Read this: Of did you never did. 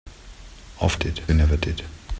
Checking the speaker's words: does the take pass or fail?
pass